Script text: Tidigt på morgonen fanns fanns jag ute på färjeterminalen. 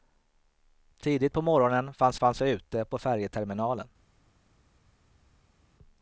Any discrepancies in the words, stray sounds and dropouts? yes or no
no